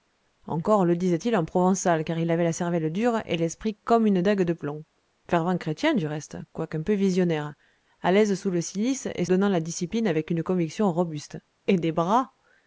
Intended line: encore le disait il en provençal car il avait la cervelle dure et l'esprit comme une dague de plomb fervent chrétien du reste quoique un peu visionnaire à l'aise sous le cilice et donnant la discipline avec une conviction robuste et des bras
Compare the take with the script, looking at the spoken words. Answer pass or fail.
pass